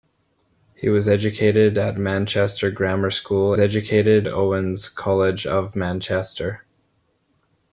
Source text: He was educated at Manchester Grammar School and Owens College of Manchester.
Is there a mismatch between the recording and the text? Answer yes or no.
yes